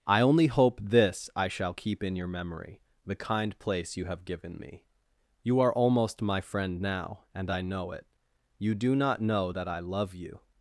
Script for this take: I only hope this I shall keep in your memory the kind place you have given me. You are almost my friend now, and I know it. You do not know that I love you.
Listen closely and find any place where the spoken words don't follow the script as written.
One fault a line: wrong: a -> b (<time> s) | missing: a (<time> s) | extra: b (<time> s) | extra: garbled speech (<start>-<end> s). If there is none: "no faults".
no faults